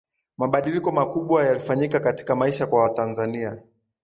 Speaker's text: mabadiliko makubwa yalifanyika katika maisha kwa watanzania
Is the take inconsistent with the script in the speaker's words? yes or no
no